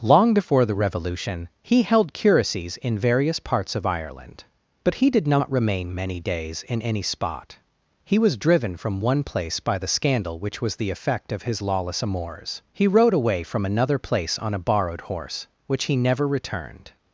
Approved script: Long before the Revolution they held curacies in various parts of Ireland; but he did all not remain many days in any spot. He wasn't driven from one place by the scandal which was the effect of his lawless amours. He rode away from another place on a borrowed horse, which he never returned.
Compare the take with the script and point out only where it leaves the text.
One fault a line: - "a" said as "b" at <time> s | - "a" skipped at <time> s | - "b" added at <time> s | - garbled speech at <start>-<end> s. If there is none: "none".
- "they" said as "he" at 1.6 s
- "all" skipped at 5.3 s
- "wasn't" said as "was" at 8.2 s